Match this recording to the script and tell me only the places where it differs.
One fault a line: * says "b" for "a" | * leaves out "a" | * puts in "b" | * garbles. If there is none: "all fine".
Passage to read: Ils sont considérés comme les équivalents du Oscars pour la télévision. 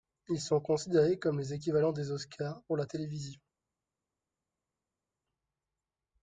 * says "des" for "du"